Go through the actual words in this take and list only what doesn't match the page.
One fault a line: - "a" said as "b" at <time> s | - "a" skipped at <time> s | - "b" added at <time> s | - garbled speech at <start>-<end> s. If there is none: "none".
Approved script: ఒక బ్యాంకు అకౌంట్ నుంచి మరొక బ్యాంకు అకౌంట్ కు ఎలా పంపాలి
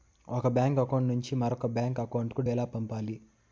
none